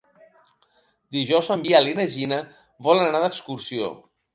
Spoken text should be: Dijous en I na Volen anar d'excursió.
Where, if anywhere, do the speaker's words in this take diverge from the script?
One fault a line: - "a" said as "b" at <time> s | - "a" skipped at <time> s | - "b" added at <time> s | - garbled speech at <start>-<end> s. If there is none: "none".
- "Biel" added at 1.6 s
- "Gina" added at 2.2 s